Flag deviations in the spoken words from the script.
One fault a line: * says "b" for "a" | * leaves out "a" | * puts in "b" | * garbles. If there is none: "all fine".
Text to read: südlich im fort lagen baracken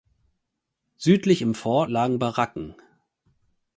all fine